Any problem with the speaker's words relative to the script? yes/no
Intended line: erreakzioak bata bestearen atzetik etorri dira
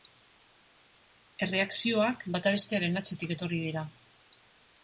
no